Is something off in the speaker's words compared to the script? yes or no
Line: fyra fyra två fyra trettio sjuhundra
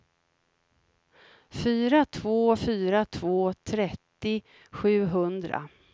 yes